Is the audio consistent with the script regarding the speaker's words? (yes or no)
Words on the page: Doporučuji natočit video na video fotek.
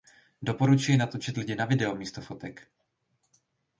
no